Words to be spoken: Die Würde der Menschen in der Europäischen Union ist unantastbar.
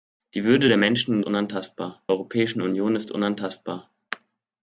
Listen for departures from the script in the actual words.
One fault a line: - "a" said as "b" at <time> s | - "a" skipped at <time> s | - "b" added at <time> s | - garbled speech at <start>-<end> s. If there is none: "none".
- "der" said as "unantastbar" at 1.2 s